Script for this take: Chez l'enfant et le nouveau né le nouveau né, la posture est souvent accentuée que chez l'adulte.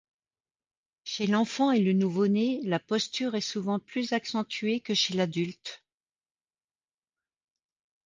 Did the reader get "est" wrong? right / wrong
right